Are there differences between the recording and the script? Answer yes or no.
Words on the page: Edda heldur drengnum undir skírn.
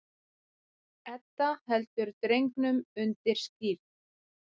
no